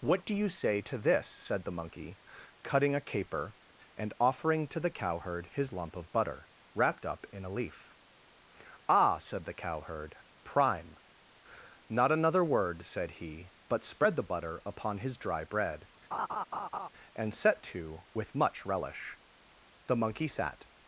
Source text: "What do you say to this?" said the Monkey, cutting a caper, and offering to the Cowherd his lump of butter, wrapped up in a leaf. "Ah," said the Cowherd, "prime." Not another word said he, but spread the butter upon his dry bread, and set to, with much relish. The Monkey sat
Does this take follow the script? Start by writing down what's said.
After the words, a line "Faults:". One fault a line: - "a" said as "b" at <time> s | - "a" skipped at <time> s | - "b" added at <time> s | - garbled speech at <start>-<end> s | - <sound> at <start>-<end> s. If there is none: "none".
"What do you say to this?" said the Monkey, cutting a caper, and offering to the Cowherd his lump of butter, wrapped up in a leaf. "Ah," said the Cowherd, "prime." Not another word said he, but spread the butter upon his dry bread, and set to, with much relish. The Monkey sat
Faults:
- laugh at 16.1-16.9 s